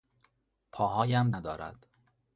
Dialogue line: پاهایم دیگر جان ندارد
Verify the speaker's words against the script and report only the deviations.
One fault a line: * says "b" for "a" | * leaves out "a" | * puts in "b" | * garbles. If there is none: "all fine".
* leaves out "دیگر جان"